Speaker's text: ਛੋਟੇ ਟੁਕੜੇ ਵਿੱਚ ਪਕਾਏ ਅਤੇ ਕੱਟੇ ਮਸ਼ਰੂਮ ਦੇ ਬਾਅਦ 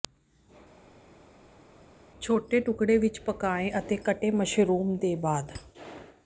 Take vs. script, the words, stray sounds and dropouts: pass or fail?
pass